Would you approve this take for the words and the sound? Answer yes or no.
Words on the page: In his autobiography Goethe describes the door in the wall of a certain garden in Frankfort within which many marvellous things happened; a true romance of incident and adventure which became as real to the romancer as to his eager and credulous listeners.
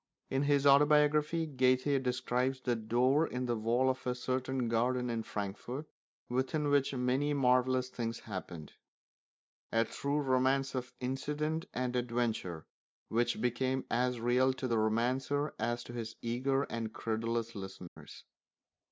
no